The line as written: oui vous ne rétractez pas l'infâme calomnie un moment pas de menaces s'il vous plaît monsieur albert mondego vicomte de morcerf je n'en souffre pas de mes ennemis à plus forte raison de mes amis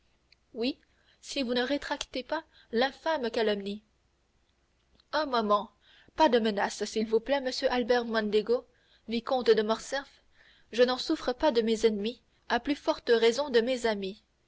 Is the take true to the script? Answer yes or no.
no